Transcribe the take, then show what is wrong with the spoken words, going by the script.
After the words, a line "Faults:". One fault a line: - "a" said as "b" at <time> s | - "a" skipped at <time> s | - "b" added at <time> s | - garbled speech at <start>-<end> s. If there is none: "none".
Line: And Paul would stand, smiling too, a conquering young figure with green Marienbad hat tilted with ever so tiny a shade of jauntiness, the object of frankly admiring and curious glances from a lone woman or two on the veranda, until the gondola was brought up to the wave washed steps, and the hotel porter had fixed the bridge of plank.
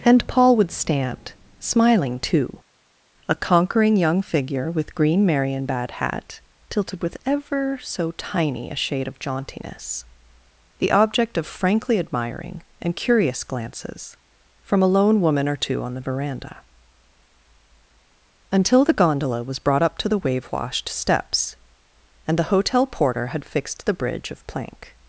And Paul would stand, smiling too, a conquering young figure with green Marienbad hat tilted with ever so tiny a shade of jauntiness, the object of frankly admiring and curious glances from a lone woman or two on the veranda, until the gondola was brought up to the wave washed steps, and the hotel porter had fixed the bridge of plank.
Faults:
none